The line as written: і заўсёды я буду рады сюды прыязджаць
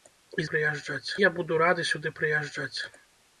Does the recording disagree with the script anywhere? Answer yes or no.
yes